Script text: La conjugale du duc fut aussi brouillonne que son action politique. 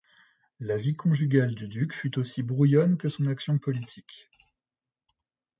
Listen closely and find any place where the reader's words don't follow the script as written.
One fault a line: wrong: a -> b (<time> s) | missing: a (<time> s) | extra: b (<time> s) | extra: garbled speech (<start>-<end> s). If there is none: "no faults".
extra: vie (0.8 s)